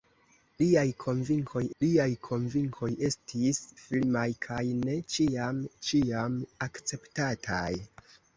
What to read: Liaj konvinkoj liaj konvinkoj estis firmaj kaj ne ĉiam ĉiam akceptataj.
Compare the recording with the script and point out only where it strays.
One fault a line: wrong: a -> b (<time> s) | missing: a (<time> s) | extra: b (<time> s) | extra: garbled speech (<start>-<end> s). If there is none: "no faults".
no faults